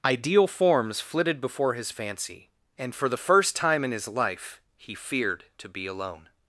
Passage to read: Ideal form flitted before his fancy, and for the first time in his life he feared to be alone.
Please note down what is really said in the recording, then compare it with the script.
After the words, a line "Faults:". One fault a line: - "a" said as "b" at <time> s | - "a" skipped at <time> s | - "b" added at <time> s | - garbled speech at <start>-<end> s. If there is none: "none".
Ideal forms flitted before his fancy, and for the first time in his life he feared to be alone.
Faults:
- "form" said as "forms" at 0.5 s